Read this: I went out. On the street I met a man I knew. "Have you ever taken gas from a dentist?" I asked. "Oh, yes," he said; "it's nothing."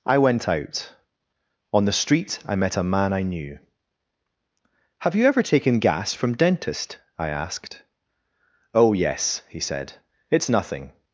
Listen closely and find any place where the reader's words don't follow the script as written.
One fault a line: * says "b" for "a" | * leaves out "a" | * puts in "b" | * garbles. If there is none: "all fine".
* leaves out "a"